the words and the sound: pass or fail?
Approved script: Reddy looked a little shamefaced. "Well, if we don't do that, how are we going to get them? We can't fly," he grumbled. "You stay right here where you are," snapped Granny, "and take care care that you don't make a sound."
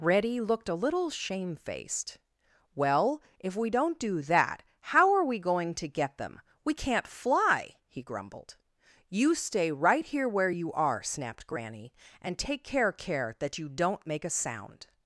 pass